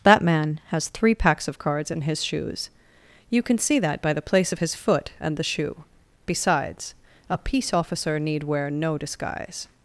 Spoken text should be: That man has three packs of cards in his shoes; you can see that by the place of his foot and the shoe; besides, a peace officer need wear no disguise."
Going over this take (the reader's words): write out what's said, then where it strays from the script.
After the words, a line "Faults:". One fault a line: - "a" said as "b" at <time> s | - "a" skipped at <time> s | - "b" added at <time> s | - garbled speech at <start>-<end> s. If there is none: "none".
That man has three packs of cards in his shoes; you can see that by the place of his foot and the shoe; besides, a peace officer need wear no disguise."
Faults:
none